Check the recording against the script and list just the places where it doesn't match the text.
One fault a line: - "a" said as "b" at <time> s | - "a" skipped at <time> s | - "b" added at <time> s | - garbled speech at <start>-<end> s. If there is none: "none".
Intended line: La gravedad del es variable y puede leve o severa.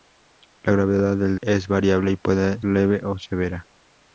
none